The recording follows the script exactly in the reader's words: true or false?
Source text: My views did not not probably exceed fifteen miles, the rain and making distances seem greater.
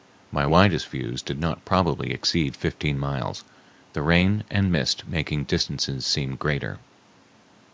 false